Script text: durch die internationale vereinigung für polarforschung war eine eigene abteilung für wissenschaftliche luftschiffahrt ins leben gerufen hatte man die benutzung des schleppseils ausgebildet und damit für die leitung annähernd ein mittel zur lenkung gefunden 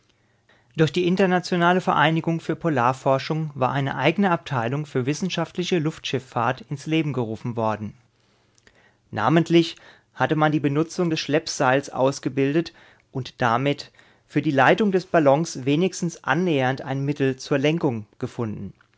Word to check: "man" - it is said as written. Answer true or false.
true